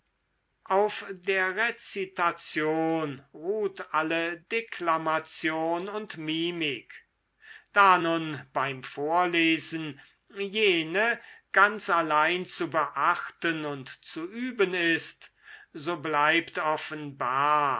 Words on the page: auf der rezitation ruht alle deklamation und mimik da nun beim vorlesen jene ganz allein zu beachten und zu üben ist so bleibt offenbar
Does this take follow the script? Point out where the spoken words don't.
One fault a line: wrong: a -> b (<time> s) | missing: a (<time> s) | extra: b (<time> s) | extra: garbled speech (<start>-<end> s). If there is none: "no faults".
no faults